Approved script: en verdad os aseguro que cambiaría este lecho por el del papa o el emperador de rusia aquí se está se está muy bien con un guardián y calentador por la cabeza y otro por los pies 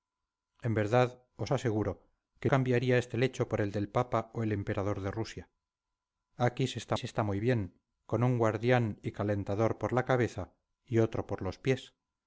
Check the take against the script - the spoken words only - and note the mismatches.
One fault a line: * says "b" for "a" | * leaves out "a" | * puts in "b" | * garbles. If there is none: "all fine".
all fine